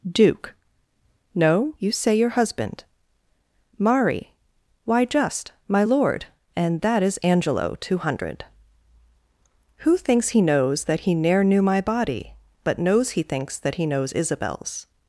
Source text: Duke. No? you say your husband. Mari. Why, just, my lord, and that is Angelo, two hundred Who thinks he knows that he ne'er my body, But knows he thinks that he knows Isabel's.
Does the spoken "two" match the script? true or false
true